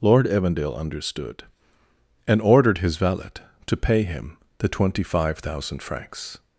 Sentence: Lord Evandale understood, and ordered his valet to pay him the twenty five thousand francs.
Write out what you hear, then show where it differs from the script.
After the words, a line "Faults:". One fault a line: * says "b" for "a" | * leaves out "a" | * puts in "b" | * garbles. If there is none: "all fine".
Lord Evandale understood, and ordered his valet to pay him the twenty five thousand francs.
Faults:
all fine